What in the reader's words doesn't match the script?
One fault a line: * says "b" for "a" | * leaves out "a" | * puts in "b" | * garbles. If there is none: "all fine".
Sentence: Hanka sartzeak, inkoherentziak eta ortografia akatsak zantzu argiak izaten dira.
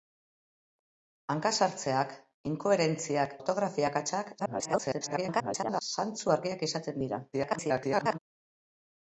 * leaves out "eta"
* garbles
* garbles